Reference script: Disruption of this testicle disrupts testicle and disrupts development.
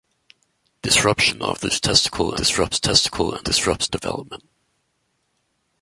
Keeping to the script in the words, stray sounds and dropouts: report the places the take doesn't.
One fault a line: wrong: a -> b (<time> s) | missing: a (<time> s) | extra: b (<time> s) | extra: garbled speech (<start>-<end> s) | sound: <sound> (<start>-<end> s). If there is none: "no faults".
no faults